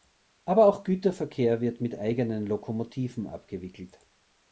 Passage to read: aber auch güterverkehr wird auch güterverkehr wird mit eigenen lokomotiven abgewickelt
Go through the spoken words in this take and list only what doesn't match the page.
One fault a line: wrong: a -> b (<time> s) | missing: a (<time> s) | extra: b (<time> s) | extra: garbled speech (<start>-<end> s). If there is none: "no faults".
missing: auch güterverkehr wird (1.8 s)